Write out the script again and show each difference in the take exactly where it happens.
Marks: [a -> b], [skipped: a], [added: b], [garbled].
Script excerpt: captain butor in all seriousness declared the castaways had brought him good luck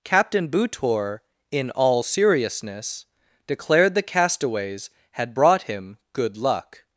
captain butor in all seriousness declared the castaways had brought him good luck